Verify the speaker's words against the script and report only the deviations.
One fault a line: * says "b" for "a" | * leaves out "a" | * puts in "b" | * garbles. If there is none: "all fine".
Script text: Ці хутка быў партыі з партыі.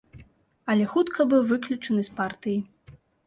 * says "Але" for "Ці"
* says "выключаны" for "партыі"